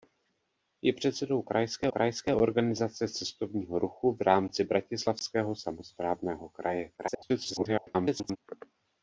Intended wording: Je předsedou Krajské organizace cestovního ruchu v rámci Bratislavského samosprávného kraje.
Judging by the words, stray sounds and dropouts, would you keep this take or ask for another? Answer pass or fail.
fail